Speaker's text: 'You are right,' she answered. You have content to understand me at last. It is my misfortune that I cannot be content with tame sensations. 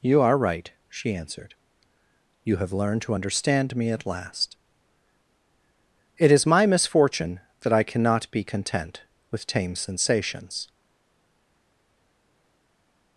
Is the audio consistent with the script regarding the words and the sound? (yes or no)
no